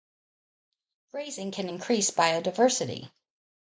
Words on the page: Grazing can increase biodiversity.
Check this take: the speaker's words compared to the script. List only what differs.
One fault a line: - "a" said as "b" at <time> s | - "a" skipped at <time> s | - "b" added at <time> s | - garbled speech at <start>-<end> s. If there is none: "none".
none